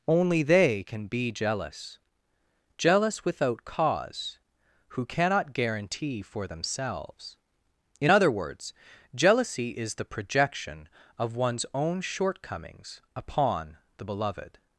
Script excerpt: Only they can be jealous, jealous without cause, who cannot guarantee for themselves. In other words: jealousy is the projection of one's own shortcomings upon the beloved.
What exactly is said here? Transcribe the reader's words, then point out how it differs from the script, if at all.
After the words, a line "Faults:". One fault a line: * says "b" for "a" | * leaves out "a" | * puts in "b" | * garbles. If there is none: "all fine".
Only they can be jealous, jealous without cause, who cannot guarantee for themselves. In other words: jealousy is the projection of one's own shortcomings upon the beloved.
Faults:
all fine